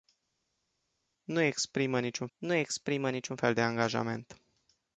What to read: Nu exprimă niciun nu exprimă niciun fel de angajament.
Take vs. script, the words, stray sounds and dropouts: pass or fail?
pass